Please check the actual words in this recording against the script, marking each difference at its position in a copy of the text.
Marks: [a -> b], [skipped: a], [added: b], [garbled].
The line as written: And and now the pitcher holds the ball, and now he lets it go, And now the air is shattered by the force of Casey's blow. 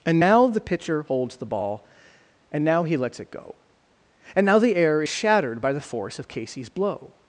And [skipped: and] now the pitcher holds the ball, and now he lets it go, And now the air is shattered by the force of Casey's blow.